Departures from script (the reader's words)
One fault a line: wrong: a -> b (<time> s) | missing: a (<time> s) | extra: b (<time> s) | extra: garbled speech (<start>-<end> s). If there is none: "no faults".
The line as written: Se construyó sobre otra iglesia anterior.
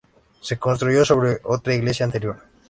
no faults